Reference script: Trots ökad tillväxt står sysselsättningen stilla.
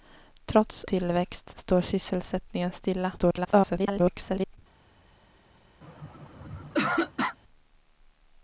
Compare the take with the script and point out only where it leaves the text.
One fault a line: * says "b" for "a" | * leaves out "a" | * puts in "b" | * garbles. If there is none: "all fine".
* leaves out "ökad"
* garbles